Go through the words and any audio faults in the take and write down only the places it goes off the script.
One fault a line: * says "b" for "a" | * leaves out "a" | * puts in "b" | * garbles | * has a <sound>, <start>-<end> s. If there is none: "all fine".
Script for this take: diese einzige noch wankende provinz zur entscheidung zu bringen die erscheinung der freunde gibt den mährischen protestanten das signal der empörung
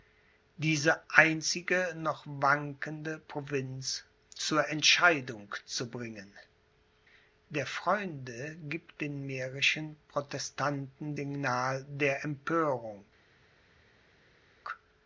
* leaves out "die erscheinung"
* leaves out "das"